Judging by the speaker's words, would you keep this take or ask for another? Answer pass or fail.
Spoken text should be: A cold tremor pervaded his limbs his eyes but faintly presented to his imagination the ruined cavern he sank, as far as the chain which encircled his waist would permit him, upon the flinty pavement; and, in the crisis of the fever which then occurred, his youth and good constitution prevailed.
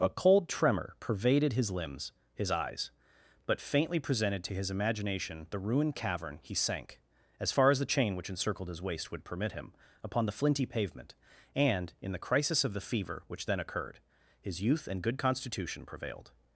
pass